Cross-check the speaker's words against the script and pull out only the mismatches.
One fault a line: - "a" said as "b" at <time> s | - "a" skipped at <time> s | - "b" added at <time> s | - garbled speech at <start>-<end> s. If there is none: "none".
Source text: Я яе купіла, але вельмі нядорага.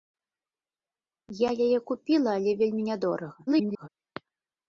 - garbled speech at 3.5-3.9 s